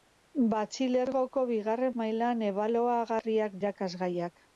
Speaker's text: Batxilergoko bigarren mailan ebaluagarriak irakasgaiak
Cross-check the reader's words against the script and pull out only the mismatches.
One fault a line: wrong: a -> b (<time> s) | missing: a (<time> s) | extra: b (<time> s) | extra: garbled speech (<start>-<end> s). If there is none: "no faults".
no faults